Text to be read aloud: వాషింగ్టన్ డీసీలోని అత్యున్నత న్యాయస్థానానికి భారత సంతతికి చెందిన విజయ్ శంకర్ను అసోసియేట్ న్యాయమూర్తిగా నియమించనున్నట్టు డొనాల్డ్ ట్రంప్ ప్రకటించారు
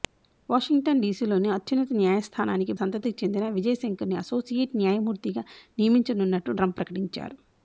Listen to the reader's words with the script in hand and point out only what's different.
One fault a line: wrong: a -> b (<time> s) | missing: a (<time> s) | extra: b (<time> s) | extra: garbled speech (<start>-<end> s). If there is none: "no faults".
missing: భారత (2.7 s)
missing: డొనాల్డ్ (6.6 s)